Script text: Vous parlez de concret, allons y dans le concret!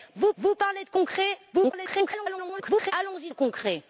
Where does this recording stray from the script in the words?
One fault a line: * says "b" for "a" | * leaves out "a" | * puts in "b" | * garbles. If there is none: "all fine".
* puts in "vous"
* garbles
* leaves out "dans"